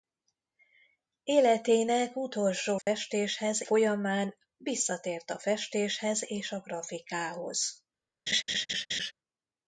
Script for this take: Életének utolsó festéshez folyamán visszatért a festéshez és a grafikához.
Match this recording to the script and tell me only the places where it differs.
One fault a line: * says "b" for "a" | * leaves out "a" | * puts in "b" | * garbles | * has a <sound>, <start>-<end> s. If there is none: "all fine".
* has a dropout, 2.8-2.9 s
* has a laugh, 8.3-9.1 s